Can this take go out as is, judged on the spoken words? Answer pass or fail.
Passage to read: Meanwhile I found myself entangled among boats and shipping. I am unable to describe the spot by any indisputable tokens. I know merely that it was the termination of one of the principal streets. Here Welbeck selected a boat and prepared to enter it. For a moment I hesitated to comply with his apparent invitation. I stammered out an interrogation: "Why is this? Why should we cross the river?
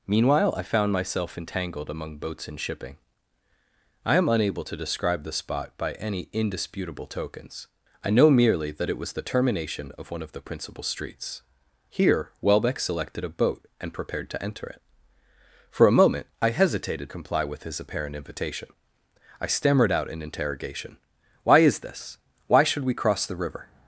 fail